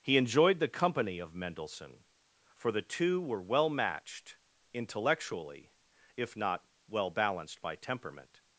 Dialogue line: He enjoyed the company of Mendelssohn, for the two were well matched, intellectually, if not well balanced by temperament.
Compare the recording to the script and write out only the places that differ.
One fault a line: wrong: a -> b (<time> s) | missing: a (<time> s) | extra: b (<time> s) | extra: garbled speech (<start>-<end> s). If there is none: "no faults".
no faults